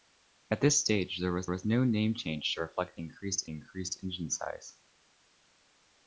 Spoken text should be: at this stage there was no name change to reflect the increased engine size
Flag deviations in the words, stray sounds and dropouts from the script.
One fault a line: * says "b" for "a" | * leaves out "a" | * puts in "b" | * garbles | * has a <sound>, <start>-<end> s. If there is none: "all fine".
* puts in "was"
* puts in "increased"